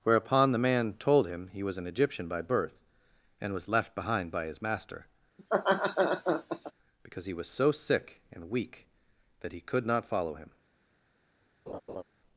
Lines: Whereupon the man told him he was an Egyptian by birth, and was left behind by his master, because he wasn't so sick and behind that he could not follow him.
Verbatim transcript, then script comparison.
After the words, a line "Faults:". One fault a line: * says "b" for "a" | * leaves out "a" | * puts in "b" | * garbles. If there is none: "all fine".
Whereupon the man told him he was an Egyptian by birth, and was left behind by his master, because he was so sick and weak that he could not follow him.
Faults:
* says "was" for "wasn't"
* says "weak" for "behind"